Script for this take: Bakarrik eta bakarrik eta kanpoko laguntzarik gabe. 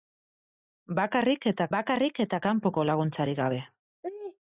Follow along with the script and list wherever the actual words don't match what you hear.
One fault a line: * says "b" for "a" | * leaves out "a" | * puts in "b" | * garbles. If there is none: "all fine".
all fine